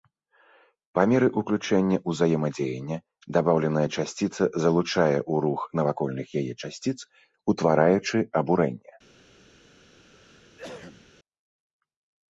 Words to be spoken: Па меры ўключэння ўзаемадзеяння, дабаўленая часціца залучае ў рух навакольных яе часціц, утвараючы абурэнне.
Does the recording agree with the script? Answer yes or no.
yes